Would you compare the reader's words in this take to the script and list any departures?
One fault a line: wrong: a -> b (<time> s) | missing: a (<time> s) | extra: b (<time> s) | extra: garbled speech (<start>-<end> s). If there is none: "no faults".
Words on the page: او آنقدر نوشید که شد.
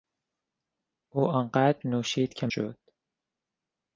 no faults